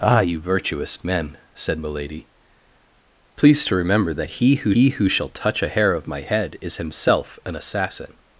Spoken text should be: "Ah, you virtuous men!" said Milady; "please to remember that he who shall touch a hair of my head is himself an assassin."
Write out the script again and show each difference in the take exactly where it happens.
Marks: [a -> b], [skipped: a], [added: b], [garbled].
"Ah, you virtuous men!" said Milady; "please to remember that he who [added: he who] shall touch a hair of my head is himself an assassin."